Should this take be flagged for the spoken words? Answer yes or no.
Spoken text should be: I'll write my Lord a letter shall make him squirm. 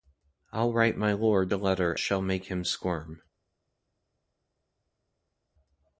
no